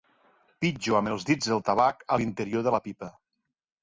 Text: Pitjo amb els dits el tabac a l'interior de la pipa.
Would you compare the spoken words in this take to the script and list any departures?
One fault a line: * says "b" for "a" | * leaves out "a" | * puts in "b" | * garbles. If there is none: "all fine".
all fine